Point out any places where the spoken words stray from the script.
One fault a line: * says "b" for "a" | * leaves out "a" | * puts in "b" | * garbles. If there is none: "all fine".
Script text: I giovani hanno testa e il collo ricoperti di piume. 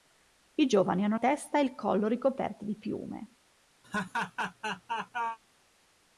all fine